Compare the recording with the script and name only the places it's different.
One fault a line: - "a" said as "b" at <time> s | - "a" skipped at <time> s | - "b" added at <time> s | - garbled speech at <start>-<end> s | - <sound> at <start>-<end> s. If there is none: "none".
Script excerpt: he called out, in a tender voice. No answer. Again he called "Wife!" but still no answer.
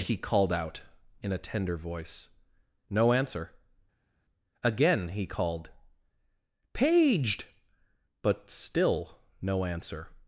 - "Wife" said as "Paged" at 6.7 s